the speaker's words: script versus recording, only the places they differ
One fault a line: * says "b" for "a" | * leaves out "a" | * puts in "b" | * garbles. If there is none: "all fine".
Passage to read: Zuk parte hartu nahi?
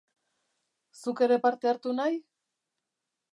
* puts in "ere"